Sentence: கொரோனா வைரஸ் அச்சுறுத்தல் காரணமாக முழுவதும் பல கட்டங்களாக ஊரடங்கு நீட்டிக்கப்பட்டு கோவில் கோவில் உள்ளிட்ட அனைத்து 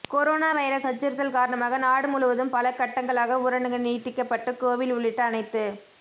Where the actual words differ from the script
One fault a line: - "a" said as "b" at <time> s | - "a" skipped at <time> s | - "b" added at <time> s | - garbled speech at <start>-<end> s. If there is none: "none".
- "நாடு" added at 1.8 s
- "கோவில்" skipped at 4.9 s